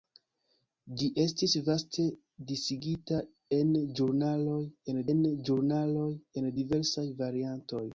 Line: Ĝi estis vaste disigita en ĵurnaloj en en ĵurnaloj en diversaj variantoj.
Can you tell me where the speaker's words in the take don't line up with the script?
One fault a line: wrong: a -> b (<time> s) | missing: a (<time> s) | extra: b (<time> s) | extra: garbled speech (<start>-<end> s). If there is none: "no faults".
no faults